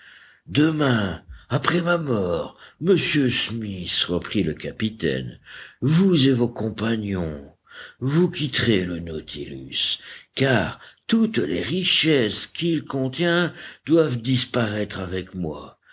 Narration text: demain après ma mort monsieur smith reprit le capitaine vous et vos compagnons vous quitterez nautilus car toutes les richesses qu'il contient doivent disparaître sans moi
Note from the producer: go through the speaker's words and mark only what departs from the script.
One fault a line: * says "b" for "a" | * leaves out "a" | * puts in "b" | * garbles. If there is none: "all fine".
* puts in "le"
* says "avec" for "sans"